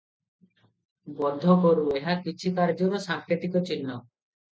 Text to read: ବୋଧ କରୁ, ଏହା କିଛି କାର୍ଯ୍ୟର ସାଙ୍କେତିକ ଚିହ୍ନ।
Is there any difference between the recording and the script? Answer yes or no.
no